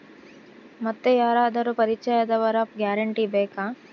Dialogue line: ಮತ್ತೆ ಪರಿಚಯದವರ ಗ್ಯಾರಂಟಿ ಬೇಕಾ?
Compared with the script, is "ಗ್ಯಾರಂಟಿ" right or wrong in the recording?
right